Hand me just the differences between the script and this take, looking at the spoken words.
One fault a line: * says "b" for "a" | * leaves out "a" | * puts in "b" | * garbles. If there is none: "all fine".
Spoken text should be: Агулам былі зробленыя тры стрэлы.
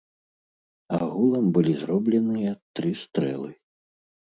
all fine